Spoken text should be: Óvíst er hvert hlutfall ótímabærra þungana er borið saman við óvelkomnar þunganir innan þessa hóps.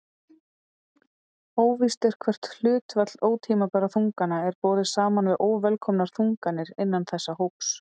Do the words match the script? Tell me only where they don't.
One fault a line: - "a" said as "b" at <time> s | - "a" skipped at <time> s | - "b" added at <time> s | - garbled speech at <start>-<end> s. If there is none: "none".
none